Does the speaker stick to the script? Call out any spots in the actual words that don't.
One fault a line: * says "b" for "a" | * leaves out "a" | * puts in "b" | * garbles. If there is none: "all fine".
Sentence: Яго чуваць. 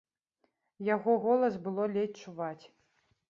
* puts in "голас было ледзь"